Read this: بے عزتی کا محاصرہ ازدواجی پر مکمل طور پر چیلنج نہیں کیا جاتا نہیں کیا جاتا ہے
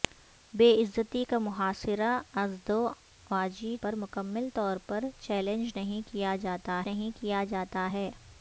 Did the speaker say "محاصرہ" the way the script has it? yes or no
yes